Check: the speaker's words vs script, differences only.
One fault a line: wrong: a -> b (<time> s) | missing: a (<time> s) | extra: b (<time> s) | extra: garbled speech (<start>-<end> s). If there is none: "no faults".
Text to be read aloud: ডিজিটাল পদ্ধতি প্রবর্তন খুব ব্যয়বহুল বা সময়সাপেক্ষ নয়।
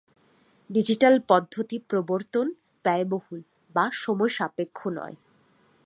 missing: খুব (2.5 s)